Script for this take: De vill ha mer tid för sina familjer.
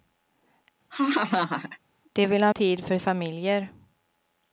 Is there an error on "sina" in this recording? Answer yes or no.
yes